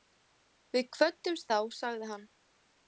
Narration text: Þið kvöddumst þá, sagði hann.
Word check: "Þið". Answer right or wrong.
wrong